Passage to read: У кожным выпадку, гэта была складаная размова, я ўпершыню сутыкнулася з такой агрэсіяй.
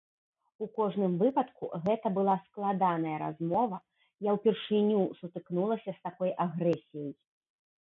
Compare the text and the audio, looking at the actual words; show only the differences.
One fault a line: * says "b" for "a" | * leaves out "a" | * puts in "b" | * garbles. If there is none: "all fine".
all fine